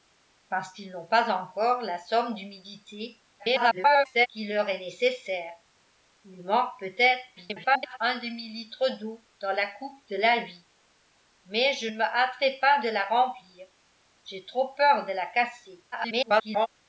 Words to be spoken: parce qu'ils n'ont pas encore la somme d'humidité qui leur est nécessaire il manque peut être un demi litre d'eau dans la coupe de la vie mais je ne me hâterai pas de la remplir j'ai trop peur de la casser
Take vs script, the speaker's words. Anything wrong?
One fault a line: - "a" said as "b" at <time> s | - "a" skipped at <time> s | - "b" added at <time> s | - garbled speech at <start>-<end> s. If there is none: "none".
- garbled speech at 3.4-4.3 s
- garbled speech at 7.4-8.0 s
- garbled speech at 15.9-16.7 s